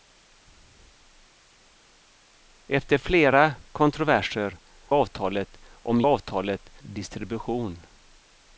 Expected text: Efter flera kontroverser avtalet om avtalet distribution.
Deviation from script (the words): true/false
false